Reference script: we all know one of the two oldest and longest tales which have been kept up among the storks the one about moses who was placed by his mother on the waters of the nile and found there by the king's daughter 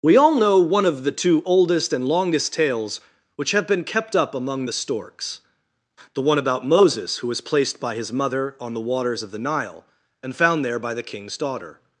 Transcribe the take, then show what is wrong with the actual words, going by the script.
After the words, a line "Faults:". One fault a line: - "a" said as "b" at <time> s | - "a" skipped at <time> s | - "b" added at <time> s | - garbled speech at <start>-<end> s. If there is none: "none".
we all know one of the two oldest and longest tales which have been kept up among the storks the one about moses who was placed by his mother on the waters of the nile and found there by the king's daughter
Faults:
none